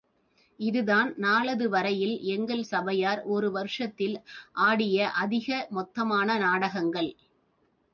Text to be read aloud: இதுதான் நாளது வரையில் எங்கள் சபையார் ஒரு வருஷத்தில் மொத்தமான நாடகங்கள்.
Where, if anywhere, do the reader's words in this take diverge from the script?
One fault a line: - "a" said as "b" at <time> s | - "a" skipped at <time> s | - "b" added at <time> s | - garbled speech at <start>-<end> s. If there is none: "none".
- "ஆடிய அதிக" added at 4.5 s